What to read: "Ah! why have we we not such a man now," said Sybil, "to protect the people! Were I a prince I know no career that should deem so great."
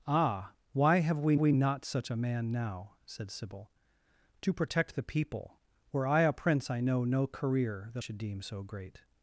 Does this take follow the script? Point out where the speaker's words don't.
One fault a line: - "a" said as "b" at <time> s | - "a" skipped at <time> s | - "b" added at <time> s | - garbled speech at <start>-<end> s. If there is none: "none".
none